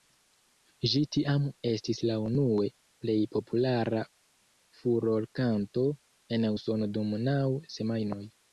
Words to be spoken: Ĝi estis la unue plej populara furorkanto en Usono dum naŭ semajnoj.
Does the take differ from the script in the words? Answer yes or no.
yes